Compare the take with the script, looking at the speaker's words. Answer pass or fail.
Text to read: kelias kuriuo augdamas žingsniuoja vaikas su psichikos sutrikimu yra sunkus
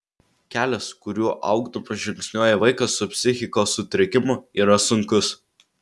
pass